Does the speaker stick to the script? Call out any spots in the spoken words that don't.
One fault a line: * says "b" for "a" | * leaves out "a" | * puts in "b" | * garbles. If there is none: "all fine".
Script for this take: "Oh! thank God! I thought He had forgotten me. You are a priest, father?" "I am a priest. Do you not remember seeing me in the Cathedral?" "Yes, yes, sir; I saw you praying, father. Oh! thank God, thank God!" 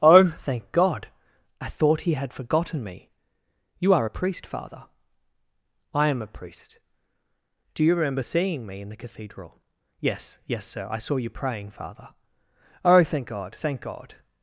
* leaves out "not"